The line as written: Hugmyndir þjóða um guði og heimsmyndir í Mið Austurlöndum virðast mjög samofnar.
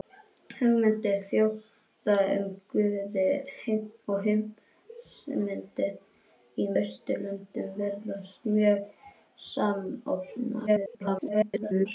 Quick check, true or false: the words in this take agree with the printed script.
false